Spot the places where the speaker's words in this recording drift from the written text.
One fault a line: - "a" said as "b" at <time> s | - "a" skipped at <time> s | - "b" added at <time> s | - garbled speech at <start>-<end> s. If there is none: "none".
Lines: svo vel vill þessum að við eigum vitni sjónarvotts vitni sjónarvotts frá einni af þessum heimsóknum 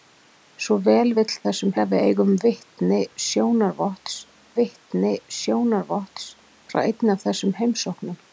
none